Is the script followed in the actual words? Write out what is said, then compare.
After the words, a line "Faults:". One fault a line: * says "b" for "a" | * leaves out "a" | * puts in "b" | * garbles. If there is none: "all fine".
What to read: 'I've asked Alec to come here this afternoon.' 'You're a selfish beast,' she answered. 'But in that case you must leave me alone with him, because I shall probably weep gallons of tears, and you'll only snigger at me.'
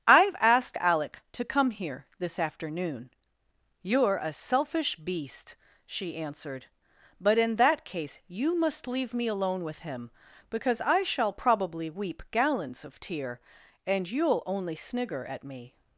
'I've asked Alec to come here this afternoon.' 'You're a selfish beast,' she answered. 'But in that case you must leave me alone with him, because I shall probably weep gallons of tear, and you'll only snigger at me.'
Faults:
* says "tear" for "tears"